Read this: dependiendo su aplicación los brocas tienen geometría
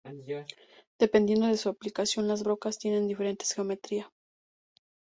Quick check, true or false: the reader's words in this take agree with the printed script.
false